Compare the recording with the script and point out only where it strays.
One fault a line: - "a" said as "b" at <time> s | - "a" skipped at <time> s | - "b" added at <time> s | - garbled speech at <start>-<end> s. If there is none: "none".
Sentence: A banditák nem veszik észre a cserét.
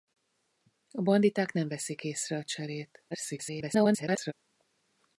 - garbled speech at 3.1-4.3 s